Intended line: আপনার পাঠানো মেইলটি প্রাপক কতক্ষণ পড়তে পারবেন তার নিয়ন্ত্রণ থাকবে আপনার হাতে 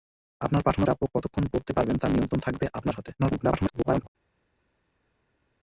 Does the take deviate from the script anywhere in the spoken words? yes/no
yes